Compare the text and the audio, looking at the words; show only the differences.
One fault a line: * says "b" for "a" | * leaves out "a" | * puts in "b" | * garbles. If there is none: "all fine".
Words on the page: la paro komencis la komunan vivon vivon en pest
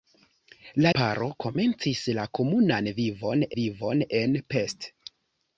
all fine